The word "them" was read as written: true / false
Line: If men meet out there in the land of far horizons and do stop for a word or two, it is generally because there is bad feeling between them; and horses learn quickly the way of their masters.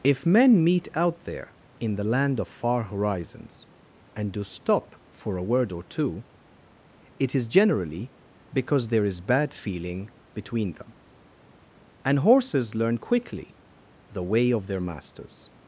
true